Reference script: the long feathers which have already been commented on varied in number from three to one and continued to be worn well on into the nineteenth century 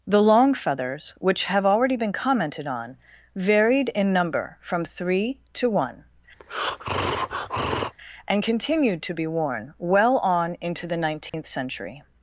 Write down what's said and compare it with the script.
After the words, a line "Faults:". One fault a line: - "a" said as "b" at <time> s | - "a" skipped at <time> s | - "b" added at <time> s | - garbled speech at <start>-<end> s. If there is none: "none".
the long feathers which have already been commented on varied in number from three to one and continued to be worn well on into the nineteenth century
Faults:
none